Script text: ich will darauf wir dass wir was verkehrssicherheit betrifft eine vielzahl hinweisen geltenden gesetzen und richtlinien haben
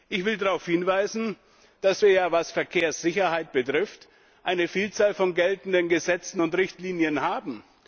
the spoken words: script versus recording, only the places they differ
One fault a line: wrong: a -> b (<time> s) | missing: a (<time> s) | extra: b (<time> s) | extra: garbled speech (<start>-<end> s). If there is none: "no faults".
wrong: wir -> hinweisen (0.7 s)
wrong: hinweisen -> von (5.1 s)